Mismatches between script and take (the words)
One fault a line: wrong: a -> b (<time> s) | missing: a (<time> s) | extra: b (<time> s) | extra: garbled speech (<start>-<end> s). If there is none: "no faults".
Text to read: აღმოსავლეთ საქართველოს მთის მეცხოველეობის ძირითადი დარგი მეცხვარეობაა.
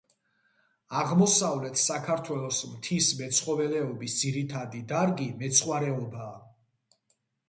no faults